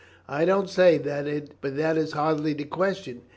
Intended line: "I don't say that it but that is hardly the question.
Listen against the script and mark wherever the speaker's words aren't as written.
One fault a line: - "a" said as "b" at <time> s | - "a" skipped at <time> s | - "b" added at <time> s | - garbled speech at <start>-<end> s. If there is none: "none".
none